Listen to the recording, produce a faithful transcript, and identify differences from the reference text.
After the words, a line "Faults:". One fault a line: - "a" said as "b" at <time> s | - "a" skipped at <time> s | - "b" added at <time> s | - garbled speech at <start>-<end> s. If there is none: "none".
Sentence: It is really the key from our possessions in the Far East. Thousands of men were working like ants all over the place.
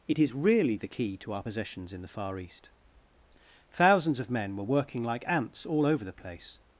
It is really the key to our possessions in the Far East. Thousands of men were working like ants all over the place.
Faults:
- "from" said as "to" at 1.2 s